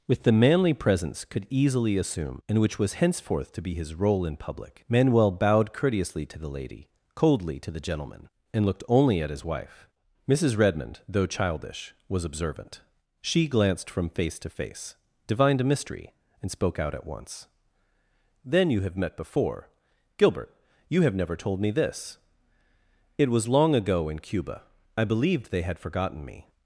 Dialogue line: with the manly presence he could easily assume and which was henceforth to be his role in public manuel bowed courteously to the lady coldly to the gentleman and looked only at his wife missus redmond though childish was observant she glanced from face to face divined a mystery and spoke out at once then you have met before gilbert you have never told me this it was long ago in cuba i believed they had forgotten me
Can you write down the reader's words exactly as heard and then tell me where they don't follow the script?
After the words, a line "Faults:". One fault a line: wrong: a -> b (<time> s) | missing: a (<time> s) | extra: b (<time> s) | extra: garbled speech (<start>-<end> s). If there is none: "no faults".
with the manly presence could easily assume and which was henceforth to be his role in public manuel bowed courteously to the lady coldly to the gentleman and looked only at his wife missus redmond though childish was observant she glanced from face to face divined a mystery and spoke out at once then you have met before gilbert you have never told me this it was long ago in cuba i believed they had forgotten me
Faults:
missing: he (1.2 s)